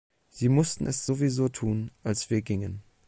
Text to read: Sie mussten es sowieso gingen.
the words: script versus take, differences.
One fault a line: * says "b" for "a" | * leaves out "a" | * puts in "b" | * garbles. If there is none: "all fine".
* puts in "tun als wir"